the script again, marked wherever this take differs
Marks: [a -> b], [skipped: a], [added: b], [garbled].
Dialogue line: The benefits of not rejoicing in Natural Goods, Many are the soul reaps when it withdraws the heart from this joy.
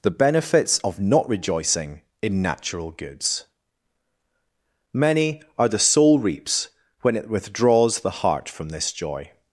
The benefits of not rejoicing in Natural Goods, Many are the soul reaps when it withdraws the heart from this joy.